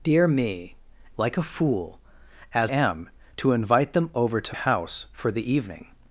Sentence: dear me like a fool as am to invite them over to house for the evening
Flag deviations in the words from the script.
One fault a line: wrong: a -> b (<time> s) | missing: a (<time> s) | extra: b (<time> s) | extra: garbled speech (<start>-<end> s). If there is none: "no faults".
no faults